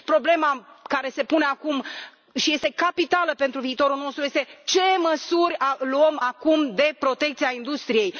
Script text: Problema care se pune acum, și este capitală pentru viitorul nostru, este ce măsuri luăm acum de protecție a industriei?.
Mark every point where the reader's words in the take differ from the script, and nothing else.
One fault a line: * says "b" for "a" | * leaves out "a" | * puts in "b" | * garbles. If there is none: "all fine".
all fine